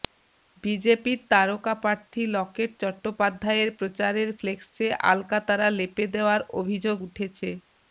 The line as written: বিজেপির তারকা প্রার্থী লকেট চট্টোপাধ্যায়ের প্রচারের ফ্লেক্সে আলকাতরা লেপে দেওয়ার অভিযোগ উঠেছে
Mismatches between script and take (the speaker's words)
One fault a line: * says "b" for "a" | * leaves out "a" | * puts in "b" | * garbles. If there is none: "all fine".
all fine